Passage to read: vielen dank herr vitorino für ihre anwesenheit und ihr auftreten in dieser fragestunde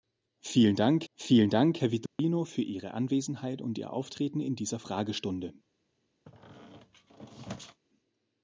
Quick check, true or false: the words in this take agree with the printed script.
false